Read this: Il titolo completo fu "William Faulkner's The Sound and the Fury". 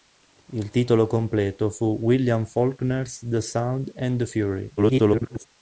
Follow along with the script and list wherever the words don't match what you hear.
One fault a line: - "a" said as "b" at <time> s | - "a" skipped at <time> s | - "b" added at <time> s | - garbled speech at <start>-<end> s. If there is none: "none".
- garbled speech at 4.8-5.5 s